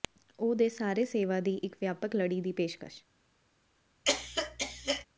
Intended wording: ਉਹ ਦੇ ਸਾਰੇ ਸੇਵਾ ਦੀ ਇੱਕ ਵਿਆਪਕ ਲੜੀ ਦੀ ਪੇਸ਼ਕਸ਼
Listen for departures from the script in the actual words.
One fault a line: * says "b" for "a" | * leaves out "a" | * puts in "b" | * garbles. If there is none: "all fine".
all fine